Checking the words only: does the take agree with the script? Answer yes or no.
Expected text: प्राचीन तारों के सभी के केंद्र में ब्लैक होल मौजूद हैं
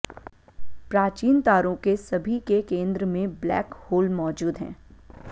yes